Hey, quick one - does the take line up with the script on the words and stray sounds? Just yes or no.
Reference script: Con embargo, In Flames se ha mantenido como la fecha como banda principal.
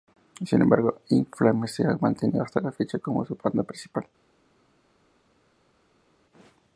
no